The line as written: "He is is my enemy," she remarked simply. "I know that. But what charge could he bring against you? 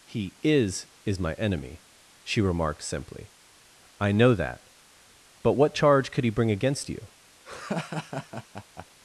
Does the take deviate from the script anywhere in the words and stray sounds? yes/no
yes